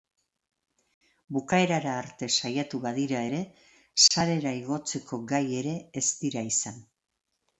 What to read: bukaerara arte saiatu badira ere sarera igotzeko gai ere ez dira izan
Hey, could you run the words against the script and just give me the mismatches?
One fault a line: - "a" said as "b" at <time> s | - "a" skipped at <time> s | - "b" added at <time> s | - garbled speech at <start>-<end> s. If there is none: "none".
none